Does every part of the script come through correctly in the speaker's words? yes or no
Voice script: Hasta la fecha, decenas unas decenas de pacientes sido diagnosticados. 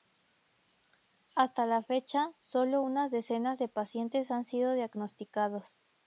no